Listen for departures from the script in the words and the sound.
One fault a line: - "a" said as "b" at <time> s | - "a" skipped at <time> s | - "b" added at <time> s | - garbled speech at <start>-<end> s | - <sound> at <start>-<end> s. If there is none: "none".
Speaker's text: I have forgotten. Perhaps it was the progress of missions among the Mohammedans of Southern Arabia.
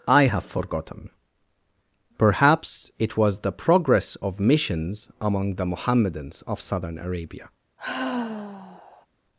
- sigh at 7.8-9.1 s